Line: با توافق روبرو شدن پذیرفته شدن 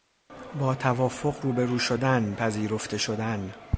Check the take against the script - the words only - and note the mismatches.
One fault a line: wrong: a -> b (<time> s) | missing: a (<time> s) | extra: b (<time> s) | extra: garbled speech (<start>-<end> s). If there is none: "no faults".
no faults